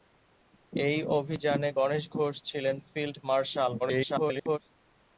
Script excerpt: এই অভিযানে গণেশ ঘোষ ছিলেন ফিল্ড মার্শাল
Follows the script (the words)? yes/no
no